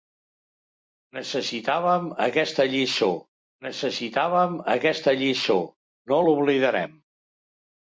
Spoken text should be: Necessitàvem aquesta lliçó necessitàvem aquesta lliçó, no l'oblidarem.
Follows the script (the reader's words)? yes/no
yes